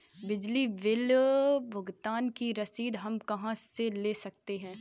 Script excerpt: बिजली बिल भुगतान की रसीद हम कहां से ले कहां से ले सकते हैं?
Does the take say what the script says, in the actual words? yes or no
no